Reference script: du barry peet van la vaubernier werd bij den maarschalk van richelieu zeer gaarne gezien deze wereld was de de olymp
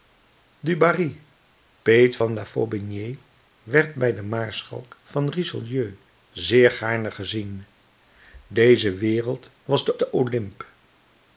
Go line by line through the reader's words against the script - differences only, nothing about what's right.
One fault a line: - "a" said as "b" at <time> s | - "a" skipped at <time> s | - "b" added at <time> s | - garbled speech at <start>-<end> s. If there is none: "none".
none